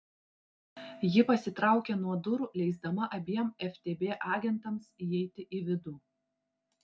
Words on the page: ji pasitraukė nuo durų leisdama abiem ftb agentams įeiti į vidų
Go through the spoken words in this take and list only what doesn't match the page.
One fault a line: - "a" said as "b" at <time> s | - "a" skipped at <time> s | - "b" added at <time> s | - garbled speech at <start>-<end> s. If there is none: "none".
none